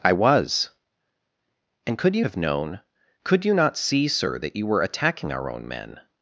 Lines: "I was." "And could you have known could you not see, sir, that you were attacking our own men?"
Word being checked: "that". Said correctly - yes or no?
yes